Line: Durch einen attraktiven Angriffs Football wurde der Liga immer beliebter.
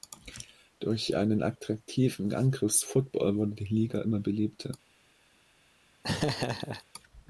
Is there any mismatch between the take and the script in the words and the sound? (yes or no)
yes